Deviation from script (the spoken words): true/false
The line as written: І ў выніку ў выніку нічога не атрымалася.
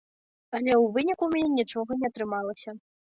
true